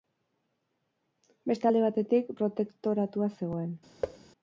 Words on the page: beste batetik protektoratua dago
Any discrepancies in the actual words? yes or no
yes